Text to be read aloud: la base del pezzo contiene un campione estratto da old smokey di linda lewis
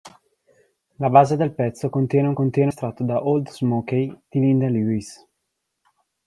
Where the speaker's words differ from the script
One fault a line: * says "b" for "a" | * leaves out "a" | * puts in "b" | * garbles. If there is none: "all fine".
* says "contiene" for "campione"